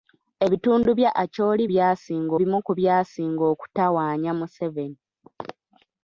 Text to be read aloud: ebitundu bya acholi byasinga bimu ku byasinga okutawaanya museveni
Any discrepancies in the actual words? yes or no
no